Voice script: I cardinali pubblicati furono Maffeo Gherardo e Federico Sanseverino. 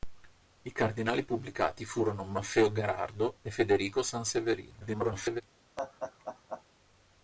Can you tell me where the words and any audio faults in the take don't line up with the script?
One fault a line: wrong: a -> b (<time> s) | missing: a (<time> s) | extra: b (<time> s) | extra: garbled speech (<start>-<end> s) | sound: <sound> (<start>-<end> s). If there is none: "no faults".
extra: garbled speech (4.8-5.4 s)
sound: laugh (5.8-6.6 s)